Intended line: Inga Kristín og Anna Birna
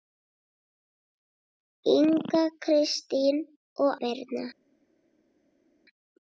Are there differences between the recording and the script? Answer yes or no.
yes